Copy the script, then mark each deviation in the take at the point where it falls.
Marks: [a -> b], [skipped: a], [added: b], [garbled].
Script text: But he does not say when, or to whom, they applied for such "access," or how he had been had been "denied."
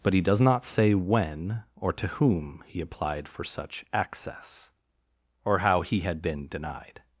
But he does not say when, or to whom, [they -> he] applied for such "access," or how he had been [skipped: had been] "denied."